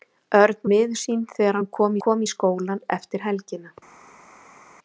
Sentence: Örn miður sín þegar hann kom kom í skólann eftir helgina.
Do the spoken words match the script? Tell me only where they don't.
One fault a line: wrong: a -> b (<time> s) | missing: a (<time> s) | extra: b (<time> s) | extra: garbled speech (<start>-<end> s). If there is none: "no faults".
no faults